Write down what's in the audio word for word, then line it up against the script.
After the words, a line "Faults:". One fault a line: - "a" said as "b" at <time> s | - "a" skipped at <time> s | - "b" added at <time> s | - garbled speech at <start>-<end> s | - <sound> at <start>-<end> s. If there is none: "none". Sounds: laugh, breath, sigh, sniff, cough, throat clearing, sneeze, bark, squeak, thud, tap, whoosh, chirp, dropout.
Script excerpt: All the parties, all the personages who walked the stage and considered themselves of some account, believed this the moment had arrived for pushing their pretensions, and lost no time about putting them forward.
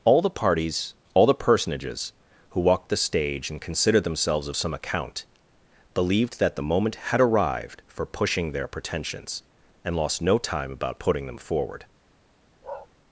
All the parties, all the personages who walked the stage and considered themselves of some account, believed that the moment had arrived for pushing their pretensions, and lost no time about putting them forward.
Faults:
- "this" said as "that" at 6.4 s
- bark at 12.6-12.9 s